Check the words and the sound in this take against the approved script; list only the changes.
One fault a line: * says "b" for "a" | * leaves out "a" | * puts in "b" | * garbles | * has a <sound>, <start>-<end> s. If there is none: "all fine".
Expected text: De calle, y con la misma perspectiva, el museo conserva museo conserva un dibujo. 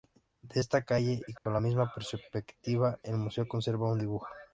* puts in "esta"
* has a dropout, 1.4-1.5 s
* leaves out "museo conserva"